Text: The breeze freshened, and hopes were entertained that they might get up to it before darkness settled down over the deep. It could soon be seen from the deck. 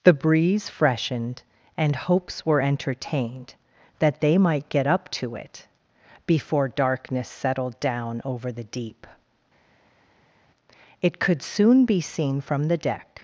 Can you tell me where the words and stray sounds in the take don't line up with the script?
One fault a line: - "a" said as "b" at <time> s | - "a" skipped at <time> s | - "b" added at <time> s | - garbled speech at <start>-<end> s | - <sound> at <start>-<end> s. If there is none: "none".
none